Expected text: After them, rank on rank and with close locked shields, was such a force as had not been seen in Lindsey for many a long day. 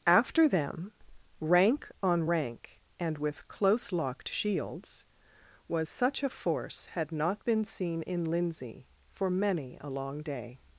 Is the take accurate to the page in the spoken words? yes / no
no